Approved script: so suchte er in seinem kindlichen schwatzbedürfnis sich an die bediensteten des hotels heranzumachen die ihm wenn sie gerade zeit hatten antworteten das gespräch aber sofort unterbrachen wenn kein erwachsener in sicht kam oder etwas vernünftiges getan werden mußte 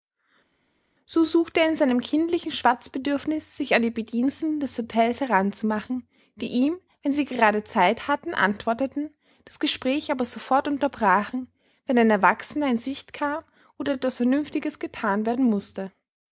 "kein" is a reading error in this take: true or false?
true